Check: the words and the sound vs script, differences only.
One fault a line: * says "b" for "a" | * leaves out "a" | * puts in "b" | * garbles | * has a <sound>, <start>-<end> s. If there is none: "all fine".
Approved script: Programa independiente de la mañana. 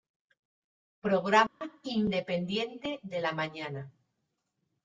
* has a dropout, 1.5-1.6 s